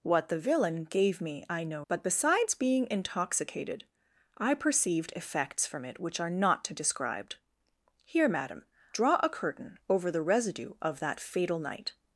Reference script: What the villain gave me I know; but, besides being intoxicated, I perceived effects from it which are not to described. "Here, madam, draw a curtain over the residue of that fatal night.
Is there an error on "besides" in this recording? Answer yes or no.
no